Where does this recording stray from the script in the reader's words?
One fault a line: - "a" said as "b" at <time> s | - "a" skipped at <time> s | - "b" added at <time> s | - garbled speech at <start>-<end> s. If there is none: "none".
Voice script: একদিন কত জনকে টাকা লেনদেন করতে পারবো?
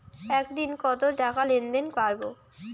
- "জনকে" skipped at 1.0 s
- "করতে" skipped at 1.9 s